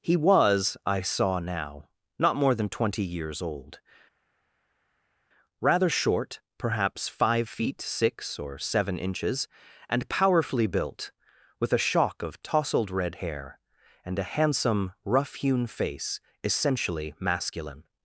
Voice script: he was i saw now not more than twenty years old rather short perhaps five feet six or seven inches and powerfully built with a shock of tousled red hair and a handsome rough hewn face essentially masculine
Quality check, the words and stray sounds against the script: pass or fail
pass